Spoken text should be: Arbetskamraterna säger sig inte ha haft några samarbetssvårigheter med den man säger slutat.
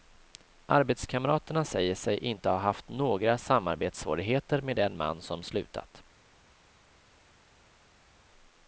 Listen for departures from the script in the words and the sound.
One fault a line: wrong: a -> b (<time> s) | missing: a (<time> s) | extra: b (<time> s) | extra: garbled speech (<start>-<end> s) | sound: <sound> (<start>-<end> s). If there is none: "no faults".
wrong: säger -> som (5.2 s)